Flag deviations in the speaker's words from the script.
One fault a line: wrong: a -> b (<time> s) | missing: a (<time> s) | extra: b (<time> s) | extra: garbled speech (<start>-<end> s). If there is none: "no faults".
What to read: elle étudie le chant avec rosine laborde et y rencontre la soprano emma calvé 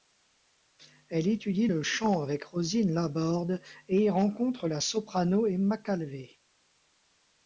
no faults